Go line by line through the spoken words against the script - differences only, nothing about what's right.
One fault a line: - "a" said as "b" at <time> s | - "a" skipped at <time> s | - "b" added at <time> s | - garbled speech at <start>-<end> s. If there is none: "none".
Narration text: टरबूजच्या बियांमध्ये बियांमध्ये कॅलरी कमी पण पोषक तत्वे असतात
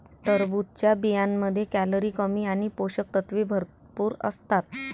- "बियांमध्ये" skipped at 1.6 s
- "पण" said as "आणि" at 2.5 s
- "भरपूर" added at 3.5 s